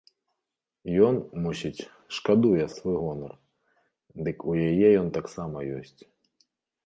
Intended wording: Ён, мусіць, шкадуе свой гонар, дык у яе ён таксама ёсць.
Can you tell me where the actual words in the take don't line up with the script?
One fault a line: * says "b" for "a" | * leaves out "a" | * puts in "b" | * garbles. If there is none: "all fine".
all fine